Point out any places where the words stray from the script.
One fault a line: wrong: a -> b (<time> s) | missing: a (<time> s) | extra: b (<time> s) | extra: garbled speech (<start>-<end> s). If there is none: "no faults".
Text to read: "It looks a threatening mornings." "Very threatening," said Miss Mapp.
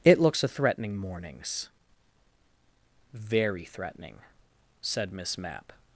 no faults